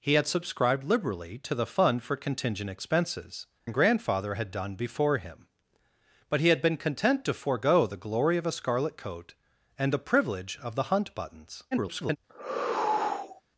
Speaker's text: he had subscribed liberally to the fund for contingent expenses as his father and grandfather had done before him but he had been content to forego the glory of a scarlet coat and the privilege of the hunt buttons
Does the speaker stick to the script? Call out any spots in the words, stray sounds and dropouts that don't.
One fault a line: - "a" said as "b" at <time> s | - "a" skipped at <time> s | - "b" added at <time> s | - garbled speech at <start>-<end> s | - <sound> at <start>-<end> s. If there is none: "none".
- "as his father" skipped at 3.5 s
- garbled speech at 11.7-12.2 s
- sigh at 12.3-13.4 s